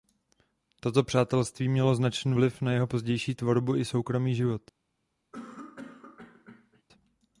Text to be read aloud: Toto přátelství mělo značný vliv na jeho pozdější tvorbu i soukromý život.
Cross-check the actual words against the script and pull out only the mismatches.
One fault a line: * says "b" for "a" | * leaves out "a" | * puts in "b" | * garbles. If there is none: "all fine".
all fine